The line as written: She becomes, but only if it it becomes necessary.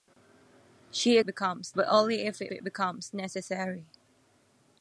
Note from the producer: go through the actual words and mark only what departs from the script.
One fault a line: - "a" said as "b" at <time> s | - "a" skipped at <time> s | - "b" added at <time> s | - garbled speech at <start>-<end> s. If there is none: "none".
none